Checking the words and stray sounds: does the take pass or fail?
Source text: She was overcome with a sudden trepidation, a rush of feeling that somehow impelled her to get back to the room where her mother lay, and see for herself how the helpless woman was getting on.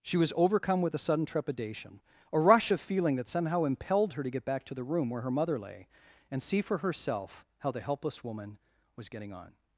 pass